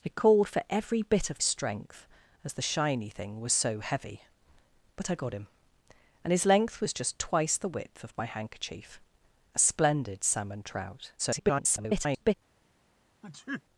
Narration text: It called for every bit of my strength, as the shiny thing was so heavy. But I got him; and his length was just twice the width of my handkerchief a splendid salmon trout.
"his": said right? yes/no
yes